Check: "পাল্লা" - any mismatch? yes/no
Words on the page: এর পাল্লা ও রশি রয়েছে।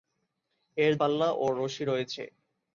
no